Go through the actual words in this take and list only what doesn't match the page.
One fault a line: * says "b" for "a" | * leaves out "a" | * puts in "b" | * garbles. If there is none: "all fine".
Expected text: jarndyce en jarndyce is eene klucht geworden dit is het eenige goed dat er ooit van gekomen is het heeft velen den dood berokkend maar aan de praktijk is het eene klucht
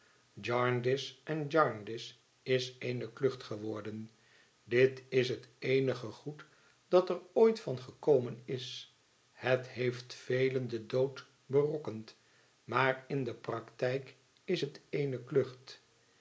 * says "in" for "aan"